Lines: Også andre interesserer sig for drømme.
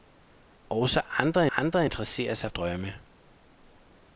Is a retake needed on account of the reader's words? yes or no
yes